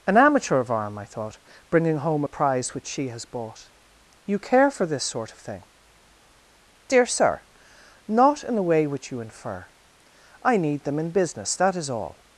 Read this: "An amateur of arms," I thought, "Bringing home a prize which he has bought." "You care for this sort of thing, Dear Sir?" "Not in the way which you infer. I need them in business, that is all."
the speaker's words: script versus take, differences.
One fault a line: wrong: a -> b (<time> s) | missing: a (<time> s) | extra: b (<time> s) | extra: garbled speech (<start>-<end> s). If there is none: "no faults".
wrong: arms -> arm (0.7 s)
wrong: he -> she (2.9 s)